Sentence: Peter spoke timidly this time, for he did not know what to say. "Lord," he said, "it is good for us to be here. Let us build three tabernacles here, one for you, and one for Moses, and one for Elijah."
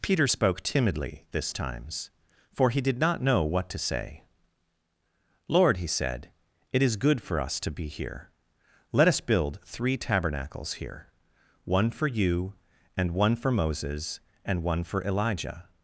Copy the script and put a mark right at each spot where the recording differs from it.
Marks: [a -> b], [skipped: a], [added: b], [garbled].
Peter spoke timidly this [time, -> times] for he did not know what to say. "Lord," he said, "it is good for us to be here. Let us build three tabernacles here, one for you, and one for Moses, and one for Elijah."